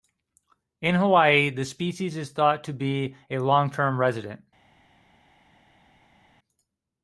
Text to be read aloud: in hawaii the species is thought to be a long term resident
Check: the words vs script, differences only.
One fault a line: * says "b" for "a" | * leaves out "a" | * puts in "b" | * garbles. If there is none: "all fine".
all fine